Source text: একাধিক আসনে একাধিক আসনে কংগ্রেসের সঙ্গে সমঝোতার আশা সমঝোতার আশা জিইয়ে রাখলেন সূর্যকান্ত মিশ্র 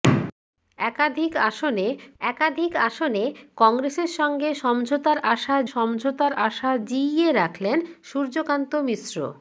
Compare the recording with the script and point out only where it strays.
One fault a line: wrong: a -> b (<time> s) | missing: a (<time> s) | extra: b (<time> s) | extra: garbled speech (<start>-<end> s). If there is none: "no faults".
no faults